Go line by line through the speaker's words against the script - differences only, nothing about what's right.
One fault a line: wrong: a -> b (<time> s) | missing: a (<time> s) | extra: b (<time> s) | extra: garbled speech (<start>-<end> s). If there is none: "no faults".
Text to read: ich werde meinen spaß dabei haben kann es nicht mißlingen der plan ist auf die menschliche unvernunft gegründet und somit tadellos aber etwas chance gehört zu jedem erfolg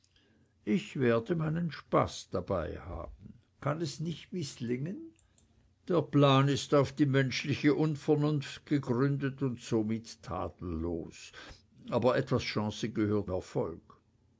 missing: zu jedem (13.3 s)